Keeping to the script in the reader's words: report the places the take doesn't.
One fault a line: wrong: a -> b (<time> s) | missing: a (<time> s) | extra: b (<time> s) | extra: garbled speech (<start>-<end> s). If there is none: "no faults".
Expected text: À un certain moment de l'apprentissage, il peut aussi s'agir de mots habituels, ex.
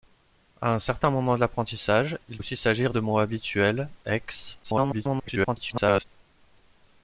missing: peut (2.4 s)
extra: garbled speech (4.6-6.0 s)